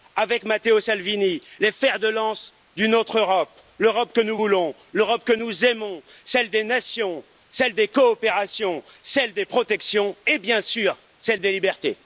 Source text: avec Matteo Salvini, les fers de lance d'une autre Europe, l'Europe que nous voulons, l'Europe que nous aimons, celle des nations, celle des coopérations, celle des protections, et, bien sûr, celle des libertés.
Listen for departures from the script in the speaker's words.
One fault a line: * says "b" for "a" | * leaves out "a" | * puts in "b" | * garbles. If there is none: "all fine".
all fine